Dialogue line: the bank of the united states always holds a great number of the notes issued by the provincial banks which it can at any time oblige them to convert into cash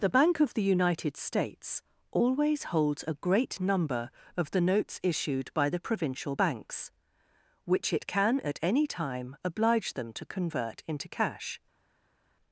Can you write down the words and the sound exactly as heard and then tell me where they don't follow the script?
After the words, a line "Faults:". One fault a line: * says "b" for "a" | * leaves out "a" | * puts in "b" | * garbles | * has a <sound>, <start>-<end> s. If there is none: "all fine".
the bank of the united states always holds a great number of the notes issued by the provincial banks which it can at any time oblige them to convert into cash
Faults:
all fine